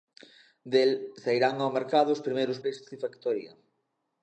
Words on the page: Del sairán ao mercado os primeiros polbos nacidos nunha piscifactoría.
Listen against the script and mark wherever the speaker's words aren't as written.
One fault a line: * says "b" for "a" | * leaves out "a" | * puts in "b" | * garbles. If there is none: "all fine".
* leaves out "polbos nacidos nunha"